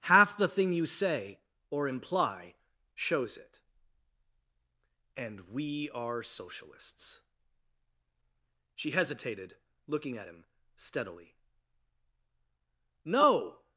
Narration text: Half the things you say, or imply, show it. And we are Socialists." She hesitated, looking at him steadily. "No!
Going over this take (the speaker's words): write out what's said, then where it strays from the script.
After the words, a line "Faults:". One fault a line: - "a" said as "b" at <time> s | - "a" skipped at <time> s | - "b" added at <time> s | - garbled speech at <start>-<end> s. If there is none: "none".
Half the thing you say, or imply, shows it. And we are Socialists." She hesitated, looking at him steadily. "No!
Faults:
- "things" said as "thing" at 0.5 s
- "show" said as "shows" at 2.9 s